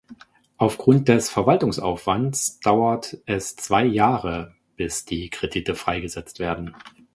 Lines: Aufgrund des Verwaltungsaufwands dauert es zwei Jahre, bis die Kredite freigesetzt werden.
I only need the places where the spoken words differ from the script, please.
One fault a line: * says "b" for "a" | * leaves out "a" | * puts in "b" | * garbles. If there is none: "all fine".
all fine